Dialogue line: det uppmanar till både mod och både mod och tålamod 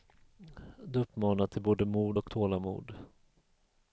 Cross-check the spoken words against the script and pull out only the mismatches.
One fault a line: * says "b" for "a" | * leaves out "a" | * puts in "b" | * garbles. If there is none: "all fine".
* leaves out "både mod och"